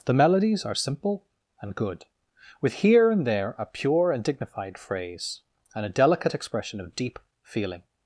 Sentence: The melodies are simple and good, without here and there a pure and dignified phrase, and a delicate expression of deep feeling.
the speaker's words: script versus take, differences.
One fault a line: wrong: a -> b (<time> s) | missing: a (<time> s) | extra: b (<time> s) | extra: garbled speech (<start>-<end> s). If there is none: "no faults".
wrong: without -> with (2.6 s)